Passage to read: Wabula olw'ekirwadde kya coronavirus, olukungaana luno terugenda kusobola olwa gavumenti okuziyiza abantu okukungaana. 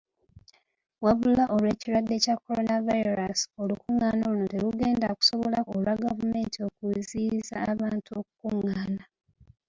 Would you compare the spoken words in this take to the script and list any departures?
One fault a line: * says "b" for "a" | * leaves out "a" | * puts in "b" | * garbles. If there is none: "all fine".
all fine